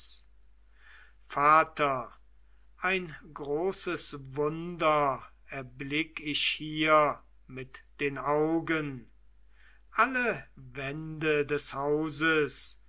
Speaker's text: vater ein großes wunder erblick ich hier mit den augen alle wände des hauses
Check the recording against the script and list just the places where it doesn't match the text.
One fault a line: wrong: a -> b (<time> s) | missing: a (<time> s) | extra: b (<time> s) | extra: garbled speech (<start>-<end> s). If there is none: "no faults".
no faults